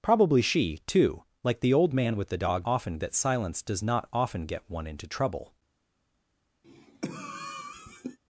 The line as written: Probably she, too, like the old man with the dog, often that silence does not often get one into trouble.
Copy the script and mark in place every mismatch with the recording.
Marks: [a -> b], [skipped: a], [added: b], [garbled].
Probably she, too, like the old man with the dog, often that silence does not often get one into trouble.